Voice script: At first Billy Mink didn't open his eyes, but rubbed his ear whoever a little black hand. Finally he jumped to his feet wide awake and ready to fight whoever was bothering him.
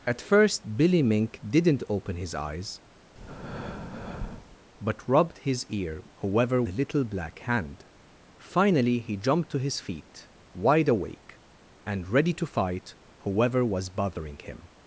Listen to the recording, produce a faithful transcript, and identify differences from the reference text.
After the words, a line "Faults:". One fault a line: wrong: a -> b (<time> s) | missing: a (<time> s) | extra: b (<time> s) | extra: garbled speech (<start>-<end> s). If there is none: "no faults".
At first Billy Mink didn't open his eyes, but rubbed his ear whoever a little black hand. Finally he jumped to his feet wide awake and ready to fight whoever was bothering him.
Faults:
no faults